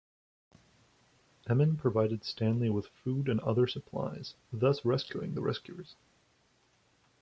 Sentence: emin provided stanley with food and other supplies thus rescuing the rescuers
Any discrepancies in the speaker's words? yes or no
no